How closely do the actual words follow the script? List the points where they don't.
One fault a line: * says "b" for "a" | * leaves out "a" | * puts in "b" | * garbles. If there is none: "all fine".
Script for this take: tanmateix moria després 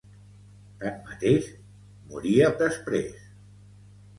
all fine